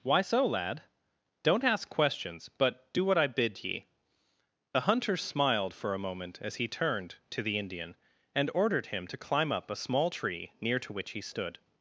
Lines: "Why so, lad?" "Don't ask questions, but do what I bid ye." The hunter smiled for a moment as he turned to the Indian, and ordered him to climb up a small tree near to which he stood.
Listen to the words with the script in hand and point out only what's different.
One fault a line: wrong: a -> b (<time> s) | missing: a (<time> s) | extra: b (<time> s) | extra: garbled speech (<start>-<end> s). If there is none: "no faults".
no faults